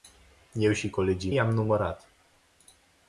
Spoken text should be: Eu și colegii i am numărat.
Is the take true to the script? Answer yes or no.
yes